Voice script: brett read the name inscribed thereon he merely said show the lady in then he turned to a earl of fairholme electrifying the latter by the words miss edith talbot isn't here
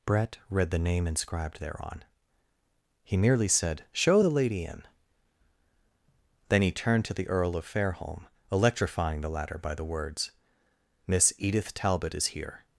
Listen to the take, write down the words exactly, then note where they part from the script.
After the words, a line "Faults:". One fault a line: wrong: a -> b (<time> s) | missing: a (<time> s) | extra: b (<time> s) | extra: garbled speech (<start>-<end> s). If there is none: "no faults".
brett read the name inscribed thereon he merely said show the lady in then he turned to the earl of fairholme electrifying the latter by the words miss edith talbot is here
Faults:
wrong: a -> the (7.1 s)
wrong: isn't -> is (12.2 s)